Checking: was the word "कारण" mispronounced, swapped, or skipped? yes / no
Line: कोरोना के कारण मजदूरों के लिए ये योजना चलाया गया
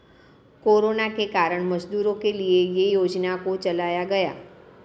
no